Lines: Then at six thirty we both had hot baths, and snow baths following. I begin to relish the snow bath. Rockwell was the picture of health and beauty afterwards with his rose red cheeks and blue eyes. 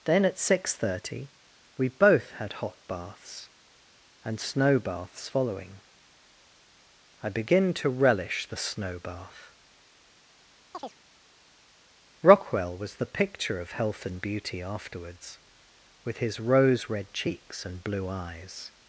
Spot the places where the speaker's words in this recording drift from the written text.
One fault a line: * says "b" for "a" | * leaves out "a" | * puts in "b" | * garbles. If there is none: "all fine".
all fine